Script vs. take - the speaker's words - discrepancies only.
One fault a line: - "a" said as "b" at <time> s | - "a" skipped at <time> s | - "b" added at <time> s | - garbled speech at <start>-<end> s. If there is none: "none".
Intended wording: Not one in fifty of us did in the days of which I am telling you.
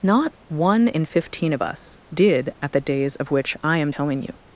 - "fifty" said as "fifteen" at 1.1 s
- "in" said as "at" at 2.6 s